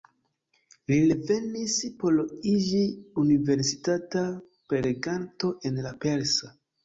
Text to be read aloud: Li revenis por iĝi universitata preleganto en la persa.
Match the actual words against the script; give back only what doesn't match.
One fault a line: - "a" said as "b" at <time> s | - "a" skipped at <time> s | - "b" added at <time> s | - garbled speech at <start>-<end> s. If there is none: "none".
none